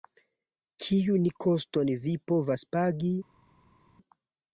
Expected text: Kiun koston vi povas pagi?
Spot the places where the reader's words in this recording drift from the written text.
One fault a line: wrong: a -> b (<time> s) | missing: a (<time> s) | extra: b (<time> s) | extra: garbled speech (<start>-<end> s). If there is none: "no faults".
no faults